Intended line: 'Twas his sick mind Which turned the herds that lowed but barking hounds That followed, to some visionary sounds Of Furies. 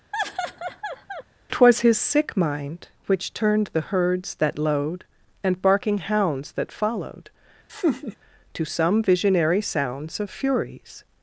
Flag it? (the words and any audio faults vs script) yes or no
yes